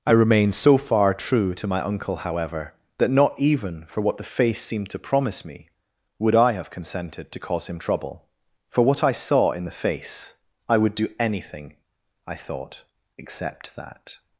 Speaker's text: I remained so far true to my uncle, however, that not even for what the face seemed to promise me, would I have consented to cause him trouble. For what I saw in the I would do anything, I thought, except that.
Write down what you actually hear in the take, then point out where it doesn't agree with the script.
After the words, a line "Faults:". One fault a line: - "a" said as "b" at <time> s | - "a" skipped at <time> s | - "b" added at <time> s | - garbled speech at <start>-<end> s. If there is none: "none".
I remained so far true to my uncle, however, that not even for what the face seemed to promise me, would I have consented to cause him trouble. For what I saw in the face, I would do anything, I thought, except that.
Faults:
- "face" added at 9.7 s